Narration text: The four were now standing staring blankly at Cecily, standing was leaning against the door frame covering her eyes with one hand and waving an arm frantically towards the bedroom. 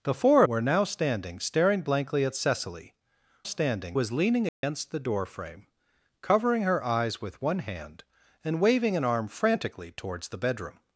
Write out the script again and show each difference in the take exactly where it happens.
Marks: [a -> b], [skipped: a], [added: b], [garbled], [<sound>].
The four were now standing staring blankly at Cecily, standing was leaning against [dropout] the door frame covering her eyes with one hand and waving an arm frantically towards the bedroom.